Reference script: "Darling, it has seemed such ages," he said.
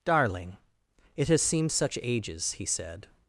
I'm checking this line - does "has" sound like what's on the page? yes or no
yes